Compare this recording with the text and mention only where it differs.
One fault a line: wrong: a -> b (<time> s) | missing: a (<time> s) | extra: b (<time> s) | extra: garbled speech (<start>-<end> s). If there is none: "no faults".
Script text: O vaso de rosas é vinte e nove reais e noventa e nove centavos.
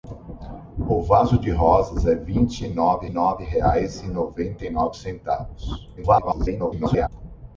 extra: nove (3.1 s)
extra: garbled speech (6.0-7.1 s)